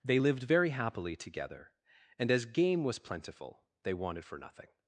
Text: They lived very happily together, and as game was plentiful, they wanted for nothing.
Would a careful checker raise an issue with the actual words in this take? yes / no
no